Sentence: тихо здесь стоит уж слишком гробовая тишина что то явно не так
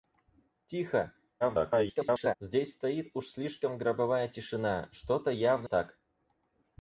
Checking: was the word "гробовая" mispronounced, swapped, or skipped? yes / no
no